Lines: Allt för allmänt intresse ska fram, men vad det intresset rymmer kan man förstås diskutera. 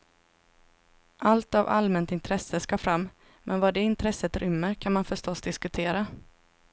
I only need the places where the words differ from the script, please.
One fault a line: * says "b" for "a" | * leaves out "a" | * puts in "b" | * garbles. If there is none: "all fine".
* says "av" for "för"